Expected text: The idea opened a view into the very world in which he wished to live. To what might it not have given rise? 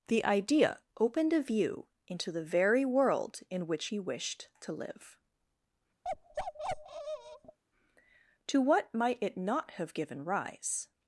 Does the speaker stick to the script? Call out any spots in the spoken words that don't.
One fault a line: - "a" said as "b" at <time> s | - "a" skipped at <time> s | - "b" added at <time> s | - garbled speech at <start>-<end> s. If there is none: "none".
none